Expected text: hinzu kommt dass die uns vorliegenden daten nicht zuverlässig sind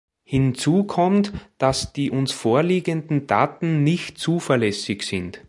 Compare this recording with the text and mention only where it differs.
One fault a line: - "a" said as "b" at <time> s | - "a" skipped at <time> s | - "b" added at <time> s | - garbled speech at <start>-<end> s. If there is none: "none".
none